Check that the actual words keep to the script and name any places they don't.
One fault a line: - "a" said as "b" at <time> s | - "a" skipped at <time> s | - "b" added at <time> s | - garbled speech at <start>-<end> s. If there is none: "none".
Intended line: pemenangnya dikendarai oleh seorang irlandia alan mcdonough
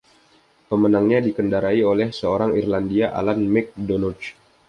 none